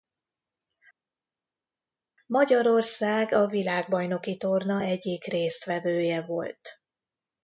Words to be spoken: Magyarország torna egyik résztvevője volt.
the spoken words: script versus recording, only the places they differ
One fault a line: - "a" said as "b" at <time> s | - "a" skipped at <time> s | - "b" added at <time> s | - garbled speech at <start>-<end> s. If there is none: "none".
- "a világbajnoki" added at 3.3 s